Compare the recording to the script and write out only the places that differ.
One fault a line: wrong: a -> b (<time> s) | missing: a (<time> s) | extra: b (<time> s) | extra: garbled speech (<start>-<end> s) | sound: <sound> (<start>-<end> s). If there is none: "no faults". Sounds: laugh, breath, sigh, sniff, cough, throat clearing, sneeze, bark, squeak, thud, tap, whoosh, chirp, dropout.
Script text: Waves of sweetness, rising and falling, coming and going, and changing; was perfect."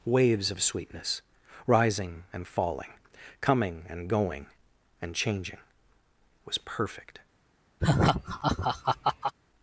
sound: laugh (7.8-9.3 s)